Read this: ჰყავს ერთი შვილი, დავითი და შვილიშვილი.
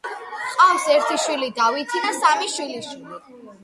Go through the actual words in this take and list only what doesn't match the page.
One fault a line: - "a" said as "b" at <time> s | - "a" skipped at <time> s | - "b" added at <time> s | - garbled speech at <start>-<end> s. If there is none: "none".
- "სამი" added at 2.2 s